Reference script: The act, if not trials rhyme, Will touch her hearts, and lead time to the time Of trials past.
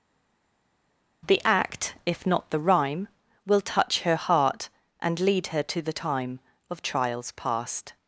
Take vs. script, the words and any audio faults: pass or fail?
fail